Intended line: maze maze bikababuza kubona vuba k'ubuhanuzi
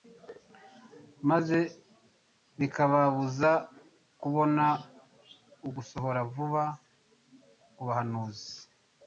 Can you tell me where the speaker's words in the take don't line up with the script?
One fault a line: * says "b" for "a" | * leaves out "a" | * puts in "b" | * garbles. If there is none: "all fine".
* leaves out "maze"
* puts in "ugusohora"